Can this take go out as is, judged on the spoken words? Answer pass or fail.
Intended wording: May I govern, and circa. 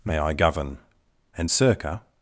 pass